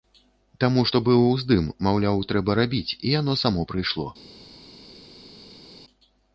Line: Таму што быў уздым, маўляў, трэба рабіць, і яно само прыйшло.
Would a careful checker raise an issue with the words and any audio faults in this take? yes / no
no